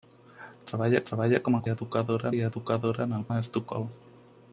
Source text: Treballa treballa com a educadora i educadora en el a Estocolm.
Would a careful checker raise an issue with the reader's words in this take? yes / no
no